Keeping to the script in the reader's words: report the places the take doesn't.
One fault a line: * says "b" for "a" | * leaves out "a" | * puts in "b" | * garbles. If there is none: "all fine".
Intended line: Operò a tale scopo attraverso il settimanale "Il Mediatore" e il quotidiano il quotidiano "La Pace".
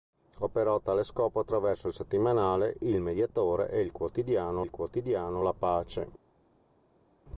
all fine